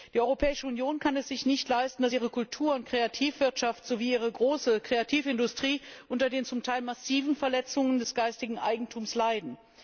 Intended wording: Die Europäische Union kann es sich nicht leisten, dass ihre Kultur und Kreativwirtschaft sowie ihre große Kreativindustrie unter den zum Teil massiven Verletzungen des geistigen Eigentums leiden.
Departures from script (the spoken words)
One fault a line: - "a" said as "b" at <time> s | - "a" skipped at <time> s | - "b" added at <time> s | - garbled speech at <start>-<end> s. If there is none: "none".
none